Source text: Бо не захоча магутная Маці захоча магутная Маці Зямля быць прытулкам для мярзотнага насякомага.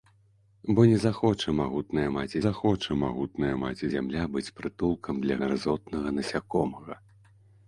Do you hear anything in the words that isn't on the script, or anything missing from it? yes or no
no